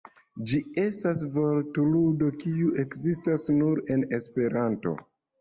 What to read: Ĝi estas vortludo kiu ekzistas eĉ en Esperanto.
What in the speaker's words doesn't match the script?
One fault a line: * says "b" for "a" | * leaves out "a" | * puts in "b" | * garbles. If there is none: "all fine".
* says "nur" for "eĉ"